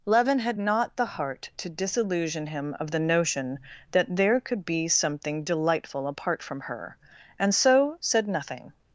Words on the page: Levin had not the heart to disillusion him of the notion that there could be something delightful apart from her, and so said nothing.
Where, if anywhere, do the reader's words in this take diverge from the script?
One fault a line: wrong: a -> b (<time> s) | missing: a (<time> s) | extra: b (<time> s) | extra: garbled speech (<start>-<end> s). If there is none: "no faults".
no faults